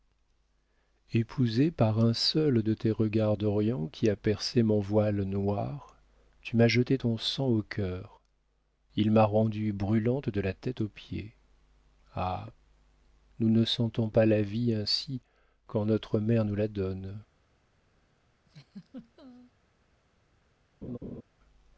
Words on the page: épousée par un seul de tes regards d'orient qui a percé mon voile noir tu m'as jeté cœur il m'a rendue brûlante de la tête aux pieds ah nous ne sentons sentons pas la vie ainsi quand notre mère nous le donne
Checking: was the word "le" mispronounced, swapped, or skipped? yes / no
yes